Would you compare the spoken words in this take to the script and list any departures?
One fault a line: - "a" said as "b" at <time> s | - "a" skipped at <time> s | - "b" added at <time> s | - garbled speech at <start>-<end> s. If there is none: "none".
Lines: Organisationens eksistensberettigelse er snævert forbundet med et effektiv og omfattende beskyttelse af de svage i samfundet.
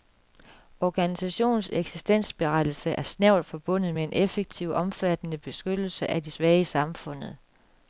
- "et" said as "en" at 4.0 s